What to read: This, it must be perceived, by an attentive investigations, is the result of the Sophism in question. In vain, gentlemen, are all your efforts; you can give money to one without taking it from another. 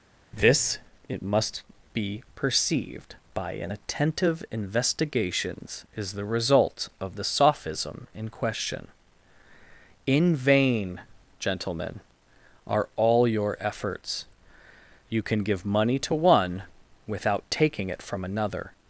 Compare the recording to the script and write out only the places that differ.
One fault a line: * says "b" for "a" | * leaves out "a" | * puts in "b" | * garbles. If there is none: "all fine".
all fine